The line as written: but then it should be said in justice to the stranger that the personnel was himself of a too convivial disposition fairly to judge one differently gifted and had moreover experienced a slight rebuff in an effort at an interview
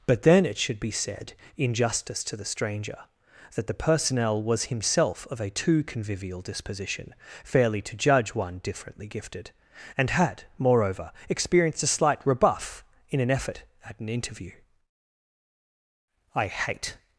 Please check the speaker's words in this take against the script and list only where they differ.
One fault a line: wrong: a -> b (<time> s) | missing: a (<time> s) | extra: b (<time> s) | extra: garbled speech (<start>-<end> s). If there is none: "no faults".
extra: i hate (16.4 s)